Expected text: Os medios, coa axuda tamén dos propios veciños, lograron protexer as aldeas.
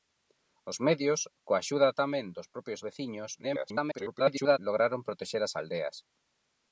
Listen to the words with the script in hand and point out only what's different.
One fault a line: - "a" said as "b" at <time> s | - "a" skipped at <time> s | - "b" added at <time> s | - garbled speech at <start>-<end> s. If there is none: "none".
- garbled speech at 3.4-4.6 s